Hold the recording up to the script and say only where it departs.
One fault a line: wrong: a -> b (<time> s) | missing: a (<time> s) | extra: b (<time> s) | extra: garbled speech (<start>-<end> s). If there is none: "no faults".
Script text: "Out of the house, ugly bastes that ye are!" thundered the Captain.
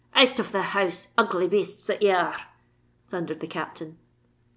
no faults